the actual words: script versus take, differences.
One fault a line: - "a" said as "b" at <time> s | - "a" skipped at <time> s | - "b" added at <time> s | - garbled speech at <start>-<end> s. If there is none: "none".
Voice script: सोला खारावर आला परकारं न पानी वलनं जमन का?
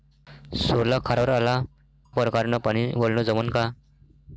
none